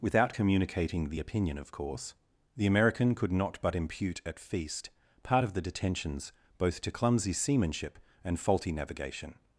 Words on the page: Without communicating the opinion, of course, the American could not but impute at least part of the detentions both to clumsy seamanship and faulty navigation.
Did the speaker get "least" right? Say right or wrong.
wrong